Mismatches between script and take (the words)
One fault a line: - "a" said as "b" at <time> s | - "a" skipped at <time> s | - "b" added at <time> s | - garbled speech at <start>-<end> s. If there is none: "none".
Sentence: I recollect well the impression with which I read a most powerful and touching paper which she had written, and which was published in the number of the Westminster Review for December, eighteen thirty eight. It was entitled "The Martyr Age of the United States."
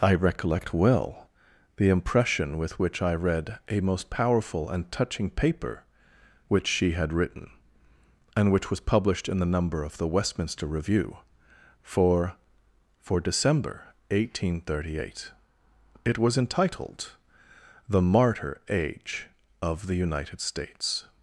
- "for" added at 13.0 s